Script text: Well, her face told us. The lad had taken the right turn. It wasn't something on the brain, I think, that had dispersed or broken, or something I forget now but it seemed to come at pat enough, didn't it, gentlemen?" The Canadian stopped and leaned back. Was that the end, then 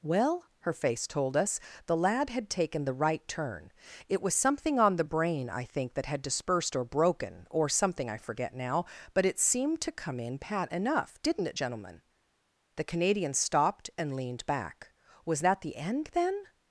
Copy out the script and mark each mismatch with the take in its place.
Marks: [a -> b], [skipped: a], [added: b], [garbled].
Well, her face told us. The lad had taken the right turn. It [wasn't -> was] something on the brain, I think, that had dispersed or broken, or something I forget now but it seemed to come [at -> in] pat enough, didn't it, gentlemen?" The Canadian stopped and leaned back. Was that the end, then